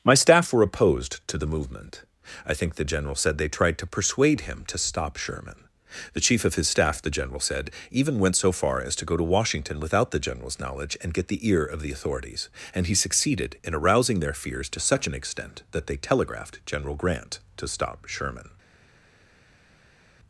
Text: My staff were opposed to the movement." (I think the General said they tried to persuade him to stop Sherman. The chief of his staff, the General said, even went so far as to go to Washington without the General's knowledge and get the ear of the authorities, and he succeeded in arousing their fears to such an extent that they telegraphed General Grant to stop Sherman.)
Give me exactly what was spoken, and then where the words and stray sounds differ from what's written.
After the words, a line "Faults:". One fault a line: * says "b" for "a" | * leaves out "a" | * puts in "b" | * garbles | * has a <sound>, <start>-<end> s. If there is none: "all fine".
My staff were opposed to the movement." (I think the General said they tried to persuade him to stop Sherman. The chief of his staff, the General said, even went so far as to go to Washington without the General's knowledge and get the ear of the authorities, and he succeeded in arousing their fears to such an extent that they telegraphed General Grant to stop Sherman.)
Faults:
all fine